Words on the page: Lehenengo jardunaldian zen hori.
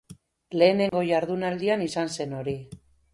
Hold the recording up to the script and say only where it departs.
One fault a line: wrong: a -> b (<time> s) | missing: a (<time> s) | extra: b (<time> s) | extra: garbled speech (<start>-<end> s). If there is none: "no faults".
extra: izan (1.9 s)